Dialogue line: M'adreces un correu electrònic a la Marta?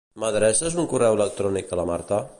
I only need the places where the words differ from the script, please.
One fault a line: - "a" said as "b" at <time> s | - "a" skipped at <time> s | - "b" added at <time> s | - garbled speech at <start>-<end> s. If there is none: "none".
none